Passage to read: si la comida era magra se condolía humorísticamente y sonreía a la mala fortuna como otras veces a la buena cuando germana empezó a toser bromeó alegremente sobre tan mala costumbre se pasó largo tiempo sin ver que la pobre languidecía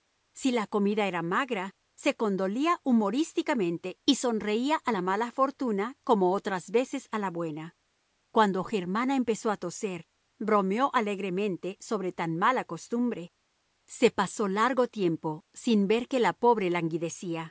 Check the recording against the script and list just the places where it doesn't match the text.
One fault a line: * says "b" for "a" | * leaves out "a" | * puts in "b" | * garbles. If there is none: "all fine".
all fine